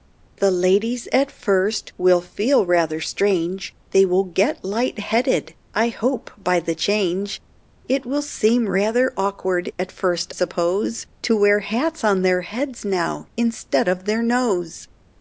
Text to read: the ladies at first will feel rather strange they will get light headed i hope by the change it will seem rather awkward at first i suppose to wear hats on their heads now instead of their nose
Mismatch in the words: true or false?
true